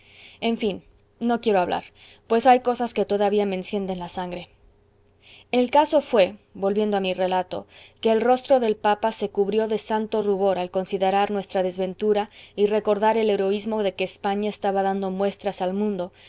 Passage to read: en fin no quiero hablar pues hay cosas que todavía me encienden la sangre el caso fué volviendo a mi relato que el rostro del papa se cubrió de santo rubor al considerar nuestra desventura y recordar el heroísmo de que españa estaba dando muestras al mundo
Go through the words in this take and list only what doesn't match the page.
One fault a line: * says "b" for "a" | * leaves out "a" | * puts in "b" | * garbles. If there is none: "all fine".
all fine